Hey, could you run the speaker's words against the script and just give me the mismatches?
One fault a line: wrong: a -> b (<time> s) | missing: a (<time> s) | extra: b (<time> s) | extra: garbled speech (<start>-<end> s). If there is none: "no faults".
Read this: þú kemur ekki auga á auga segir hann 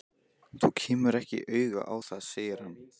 wrong: auga -> það (2.1 s)